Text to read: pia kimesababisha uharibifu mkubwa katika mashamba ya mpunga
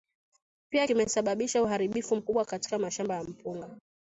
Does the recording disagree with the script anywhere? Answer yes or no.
no